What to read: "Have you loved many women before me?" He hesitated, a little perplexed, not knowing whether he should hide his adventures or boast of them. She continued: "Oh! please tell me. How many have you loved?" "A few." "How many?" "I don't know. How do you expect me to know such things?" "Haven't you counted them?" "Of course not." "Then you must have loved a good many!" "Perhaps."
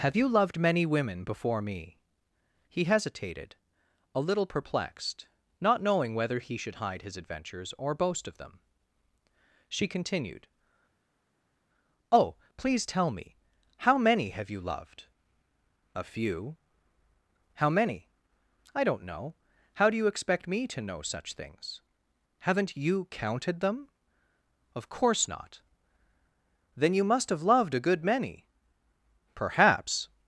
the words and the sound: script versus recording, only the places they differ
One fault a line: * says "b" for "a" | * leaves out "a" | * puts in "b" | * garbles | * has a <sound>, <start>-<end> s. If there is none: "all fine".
all fine